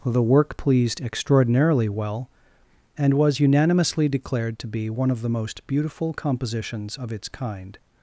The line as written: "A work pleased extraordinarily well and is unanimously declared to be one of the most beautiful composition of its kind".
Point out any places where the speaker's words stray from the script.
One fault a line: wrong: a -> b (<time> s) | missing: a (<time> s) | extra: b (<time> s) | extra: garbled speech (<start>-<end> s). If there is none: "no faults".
wrong: A -> The (0.0 s)
wrong: is -> was (3.1 s)
wrong: composition -> compositions (6.2 s)